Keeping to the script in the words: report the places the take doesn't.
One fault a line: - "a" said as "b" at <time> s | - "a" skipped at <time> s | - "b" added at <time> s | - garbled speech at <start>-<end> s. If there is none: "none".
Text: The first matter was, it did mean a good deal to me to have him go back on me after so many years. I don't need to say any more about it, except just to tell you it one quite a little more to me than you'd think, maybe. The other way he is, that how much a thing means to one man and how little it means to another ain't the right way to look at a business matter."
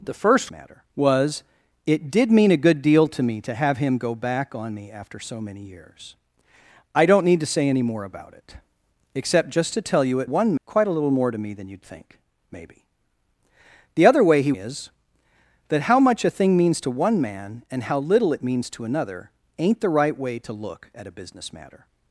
none